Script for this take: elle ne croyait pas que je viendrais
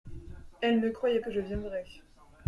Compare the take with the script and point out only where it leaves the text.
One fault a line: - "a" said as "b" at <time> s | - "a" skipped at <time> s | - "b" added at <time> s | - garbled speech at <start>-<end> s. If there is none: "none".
- "pas" skipped at 1.2 s